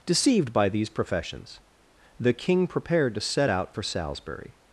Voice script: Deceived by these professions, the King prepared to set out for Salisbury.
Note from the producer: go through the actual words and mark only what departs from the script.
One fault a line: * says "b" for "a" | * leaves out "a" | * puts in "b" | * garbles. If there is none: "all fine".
all fine